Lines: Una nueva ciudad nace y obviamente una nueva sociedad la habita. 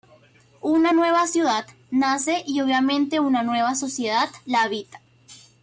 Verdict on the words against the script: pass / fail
pass